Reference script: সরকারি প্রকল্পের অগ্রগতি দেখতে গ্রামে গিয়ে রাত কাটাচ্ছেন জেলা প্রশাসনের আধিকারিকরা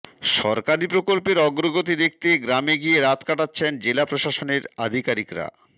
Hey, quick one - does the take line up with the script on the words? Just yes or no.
yes